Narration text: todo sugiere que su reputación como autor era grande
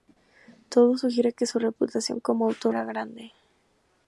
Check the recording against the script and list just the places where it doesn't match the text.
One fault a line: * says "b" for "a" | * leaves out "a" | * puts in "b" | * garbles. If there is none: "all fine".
all fine